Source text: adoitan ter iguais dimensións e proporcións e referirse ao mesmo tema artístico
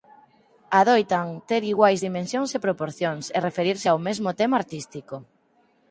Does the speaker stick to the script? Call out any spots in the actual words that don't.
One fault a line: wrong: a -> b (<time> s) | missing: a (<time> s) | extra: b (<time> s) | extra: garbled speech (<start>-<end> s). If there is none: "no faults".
no faults